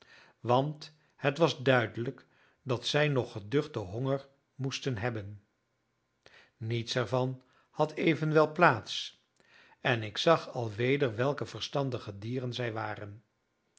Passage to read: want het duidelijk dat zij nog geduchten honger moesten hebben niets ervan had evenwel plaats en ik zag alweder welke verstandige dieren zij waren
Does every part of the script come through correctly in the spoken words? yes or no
no